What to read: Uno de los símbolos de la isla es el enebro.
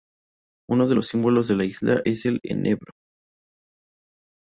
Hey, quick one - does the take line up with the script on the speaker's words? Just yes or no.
yes